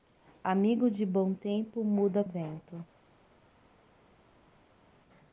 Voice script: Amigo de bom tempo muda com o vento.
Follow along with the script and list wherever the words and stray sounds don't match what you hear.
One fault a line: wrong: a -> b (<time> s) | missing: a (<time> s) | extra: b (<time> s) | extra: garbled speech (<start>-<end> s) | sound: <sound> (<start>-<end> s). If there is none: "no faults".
missing: com (2.2 s)